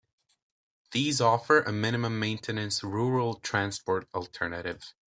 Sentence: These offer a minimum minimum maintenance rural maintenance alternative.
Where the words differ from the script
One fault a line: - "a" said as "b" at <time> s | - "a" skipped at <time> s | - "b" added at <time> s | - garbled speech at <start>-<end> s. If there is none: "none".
- "minimum" skipped at 2.2 s
- "maintenance" said as "transport" at 3.4 s